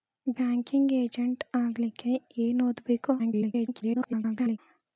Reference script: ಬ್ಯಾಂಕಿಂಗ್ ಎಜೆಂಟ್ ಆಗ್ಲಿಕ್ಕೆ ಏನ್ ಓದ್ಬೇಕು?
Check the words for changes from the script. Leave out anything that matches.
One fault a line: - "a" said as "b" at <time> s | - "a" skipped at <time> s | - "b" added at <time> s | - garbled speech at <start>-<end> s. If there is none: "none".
- garbled speech at 3.2-4.6 s